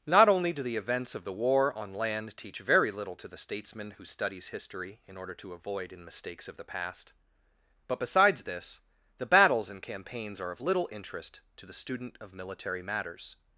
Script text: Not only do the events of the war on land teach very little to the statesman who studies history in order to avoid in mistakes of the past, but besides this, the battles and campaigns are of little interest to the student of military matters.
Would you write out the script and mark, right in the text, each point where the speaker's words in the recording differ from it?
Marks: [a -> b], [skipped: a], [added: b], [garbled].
Not only do the events of the war on land teach very little to the statesman who studies history in order to avoid in mistakes of the past, but besides this, the battles and campaigns are of little interest to the student of military matters.